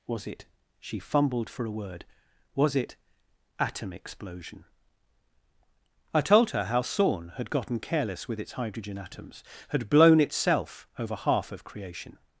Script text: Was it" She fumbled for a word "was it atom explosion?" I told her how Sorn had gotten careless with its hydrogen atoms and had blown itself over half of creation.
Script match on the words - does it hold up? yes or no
no